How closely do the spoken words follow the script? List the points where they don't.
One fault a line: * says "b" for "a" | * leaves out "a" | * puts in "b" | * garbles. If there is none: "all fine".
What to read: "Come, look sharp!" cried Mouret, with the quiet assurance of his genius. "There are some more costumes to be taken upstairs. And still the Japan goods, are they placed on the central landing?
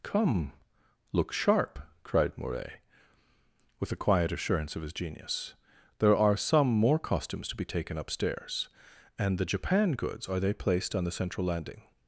* leaves out "still"